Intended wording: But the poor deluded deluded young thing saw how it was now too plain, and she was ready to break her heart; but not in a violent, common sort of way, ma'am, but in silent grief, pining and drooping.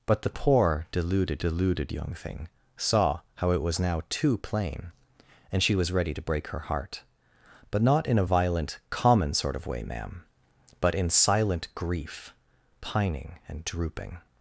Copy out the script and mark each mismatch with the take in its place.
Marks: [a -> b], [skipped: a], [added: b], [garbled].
But the poor deluded deluded young thing saw how it was now too plain, and she was ready to break her heart; but not in a violent, common sort of way, ma'am, but in silent grief, pining and drooping.